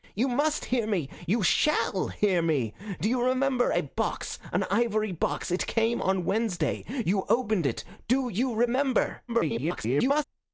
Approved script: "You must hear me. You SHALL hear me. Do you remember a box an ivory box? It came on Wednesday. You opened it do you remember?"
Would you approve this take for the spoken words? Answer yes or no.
no